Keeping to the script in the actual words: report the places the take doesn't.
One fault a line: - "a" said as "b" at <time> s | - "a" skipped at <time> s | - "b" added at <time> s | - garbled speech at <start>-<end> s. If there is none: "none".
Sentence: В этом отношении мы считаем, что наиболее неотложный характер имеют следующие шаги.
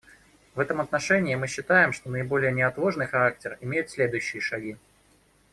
none